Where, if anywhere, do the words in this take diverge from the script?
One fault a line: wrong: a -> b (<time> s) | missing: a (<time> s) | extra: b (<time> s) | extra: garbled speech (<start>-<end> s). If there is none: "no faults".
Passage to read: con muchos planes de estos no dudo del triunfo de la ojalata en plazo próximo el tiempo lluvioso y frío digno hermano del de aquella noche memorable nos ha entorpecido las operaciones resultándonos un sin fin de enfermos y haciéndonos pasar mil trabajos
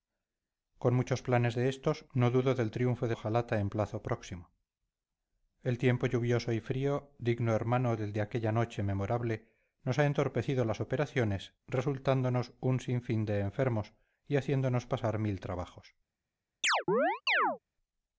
missing: la (3.1 s)